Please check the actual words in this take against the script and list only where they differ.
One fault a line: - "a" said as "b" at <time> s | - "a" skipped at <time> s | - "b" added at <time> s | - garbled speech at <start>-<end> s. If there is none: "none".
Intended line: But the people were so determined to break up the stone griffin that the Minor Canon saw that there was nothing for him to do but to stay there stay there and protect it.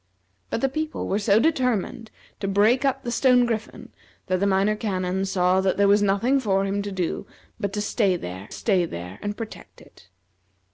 none